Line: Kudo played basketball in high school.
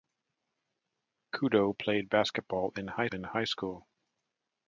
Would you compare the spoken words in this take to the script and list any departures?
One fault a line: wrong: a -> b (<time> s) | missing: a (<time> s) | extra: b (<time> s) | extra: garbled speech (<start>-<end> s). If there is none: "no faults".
extra: in high (3.1 s)